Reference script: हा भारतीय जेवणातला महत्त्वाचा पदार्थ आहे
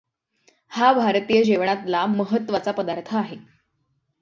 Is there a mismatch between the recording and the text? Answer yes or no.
no